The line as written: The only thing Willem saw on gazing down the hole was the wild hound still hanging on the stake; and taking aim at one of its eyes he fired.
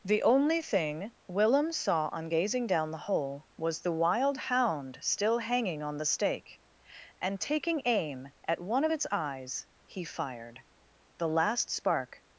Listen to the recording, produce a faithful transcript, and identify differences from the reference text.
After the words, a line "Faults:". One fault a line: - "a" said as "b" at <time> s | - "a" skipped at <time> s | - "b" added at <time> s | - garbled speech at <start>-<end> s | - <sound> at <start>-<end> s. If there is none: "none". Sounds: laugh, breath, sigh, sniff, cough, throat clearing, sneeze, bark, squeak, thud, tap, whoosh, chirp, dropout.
The only thing Willem saw on gazing down the hole was the wild hound still hanging on the stake; and taking aim at one of its eyes he fired. The last spark
Faults:
- "The last spark" added at 11.2 s